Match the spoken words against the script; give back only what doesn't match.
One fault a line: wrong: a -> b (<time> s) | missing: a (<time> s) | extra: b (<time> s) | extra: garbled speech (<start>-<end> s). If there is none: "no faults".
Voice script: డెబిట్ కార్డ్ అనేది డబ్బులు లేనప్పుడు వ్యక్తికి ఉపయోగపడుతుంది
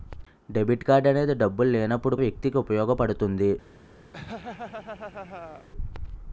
no faults